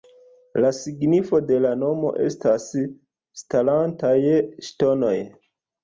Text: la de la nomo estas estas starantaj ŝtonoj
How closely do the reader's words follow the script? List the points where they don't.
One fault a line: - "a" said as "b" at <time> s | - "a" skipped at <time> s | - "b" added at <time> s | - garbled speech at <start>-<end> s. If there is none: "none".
- "signifo" added at 0.8 s
- "estas" skipped at 2.7 s